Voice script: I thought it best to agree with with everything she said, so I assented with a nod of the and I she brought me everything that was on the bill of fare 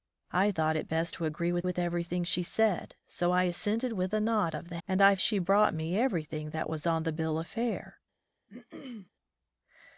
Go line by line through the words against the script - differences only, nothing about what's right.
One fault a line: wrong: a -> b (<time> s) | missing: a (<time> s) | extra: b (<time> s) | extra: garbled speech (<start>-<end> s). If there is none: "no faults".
no faults